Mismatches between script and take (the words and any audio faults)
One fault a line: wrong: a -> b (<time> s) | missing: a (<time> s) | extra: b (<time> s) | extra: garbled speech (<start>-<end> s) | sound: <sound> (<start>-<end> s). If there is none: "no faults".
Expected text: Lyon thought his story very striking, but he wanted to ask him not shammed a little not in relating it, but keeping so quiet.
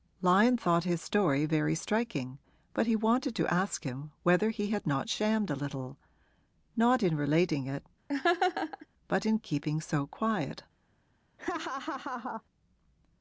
extra: whether he had (4.2 s)
sound: laugh (8.1-8.9 s)
extra: in (9.2 s)
sound: laugh (11.4-12.4 s)